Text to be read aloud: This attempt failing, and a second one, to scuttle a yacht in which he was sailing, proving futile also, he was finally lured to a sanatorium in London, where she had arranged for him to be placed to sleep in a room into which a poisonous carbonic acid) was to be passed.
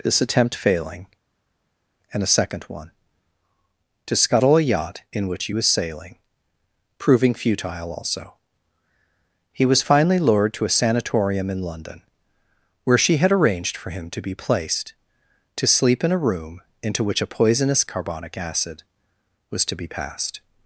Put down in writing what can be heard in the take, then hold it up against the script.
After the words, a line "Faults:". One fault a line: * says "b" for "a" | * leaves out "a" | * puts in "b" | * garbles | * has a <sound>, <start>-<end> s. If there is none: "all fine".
This attempt failing, and a second one, to scuttle a yacht in which he was sailing, proving futile also, he was finally lured to a sanatorium in London, where she had arranged for him to be placed to sleep in a room into which a poisonous carbonic acid) was to be passed.
Faults:
all fine